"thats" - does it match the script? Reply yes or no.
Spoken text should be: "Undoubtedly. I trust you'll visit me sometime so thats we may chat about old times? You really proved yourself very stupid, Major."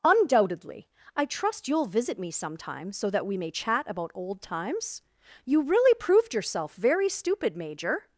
no